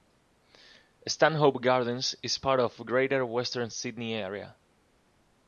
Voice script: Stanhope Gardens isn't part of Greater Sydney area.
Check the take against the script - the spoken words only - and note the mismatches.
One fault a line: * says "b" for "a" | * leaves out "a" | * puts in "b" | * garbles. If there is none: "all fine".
* says "is" for "isn't"
* puts in "Western"